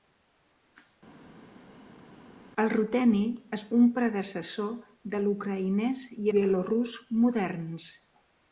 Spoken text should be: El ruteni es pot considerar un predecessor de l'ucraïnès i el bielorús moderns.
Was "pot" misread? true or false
true